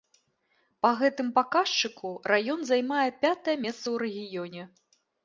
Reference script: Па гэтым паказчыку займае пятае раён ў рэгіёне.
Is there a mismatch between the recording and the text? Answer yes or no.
yes